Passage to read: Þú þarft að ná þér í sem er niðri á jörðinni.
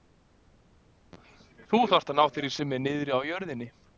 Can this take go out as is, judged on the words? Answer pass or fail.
pass